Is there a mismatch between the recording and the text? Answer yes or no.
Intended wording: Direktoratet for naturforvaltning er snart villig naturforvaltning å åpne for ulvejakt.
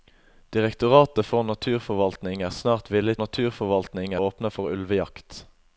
no